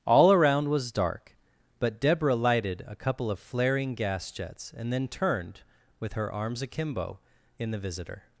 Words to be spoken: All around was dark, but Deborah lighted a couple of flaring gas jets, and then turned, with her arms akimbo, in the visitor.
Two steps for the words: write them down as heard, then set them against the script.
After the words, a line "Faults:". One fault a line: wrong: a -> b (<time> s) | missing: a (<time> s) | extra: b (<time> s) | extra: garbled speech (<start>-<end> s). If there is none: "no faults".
All around was dark, but Deborah lighted a couple of flaring gas jets, and then turned, with her arms akimbo, in the visitor.
Faults:
no faults